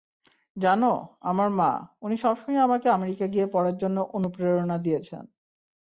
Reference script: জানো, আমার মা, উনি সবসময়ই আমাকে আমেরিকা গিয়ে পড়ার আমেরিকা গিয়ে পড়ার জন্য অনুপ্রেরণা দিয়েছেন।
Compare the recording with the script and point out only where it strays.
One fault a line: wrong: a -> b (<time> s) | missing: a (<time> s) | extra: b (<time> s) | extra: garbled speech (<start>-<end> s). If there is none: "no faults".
missing: আমেরিকা গিয়ে পড়ার (3.8 s)